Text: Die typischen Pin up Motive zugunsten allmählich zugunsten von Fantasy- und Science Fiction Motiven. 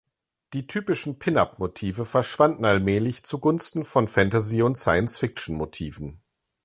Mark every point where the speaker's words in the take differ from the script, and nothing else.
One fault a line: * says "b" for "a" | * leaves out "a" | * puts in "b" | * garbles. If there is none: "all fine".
* says "verschwanden" for "zugunsten"